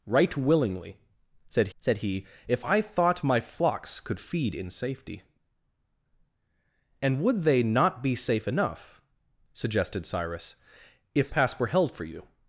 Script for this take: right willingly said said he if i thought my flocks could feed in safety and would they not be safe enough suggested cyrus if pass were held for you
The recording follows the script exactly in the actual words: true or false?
true